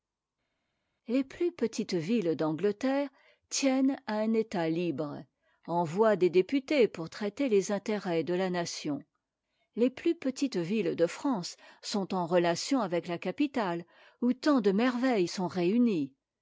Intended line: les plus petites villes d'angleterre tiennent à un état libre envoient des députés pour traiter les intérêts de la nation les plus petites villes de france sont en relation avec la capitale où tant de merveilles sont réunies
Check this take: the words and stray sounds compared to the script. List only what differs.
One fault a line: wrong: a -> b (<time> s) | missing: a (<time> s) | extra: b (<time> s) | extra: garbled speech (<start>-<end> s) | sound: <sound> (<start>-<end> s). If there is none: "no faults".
no faults